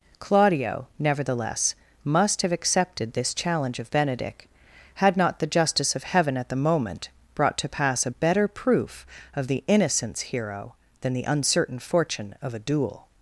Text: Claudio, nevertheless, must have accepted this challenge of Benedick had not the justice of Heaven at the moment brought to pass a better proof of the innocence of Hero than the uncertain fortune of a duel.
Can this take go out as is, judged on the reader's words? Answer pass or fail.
fail